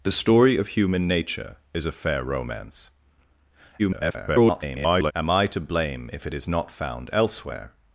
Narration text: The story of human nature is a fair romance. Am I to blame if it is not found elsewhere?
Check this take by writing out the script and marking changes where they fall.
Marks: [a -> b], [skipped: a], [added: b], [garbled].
The story of human nature is a fair romance. [garbled] Am I to blame if it is not found elsewhere?